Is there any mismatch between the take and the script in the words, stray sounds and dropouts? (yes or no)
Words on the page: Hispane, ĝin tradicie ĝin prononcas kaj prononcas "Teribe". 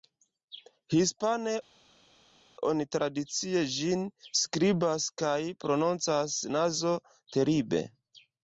yes